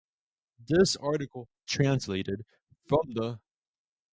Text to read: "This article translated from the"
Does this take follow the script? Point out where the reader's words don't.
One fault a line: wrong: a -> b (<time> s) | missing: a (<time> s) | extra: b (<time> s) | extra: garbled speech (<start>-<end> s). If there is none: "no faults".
no faults